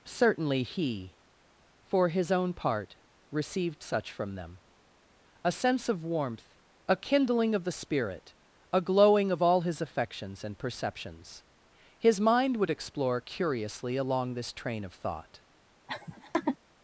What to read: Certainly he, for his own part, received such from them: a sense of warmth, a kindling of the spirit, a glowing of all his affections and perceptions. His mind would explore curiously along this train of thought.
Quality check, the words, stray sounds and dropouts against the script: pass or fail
fail